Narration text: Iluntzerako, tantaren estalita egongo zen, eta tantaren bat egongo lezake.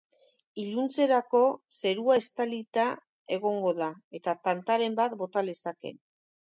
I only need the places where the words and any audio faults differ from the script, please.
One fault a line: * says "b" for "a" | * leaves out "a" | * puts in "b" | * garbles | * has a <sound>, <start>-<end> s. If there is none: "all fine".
* says "zerua" for "tantaren"
* says "da" for "zen"
* says "bota" for "egongo"